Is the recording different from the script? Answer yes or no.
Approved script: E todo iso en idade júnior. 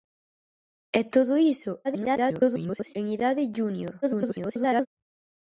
yes